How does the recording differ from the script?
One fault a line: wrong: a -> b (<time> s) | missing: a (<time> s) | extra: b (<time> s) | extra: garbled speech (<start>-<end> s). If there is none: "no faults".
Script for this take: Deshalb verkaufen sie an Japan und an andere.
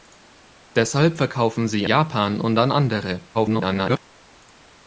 missing: an (1.9 s)
extra: garbled speech (3.3-4.0 s)